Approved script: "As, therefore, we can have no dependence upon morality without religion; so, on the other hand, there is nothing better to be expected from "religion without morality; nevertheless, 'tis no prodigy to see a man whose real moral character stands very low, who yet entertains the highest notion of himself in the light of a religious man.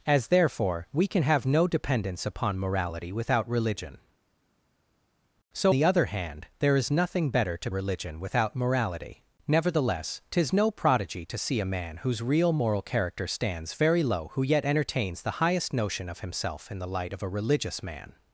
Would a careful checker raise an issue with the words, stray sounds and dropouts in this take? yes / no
yes